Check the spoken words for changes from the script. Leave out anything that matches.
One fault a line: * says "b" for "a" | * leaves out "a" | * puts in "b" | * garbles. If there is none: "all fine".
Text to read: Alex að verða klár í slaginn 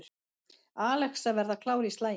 all fine